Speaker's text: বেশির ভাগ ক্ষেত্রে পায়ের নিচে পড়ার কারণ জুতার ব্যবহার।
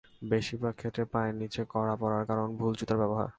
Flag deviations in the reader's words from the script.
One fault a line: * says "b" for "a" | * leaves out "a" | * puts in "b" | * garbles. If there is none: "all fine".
* puts in "কড়া"
* puts in "ভুল"